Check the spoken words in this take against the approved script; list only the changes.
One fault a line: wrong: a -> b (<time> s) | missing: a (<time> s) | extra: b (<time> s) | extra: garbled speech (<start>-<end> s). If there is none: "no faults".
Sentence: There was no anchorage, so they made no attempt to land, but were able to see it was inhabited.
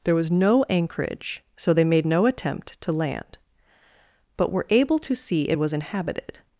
no faults